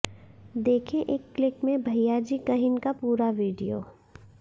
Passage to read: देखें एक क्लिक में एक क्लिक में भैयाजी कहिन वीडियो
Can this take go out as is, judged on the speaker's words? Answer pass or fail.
fail